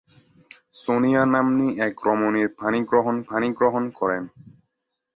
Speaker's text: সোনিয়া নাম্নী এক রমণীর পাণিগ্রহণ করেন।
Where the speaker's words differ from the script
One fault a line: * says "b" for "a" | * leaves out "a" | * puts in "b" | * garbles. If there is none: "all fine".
* puts in "পাণিগ্রহণ"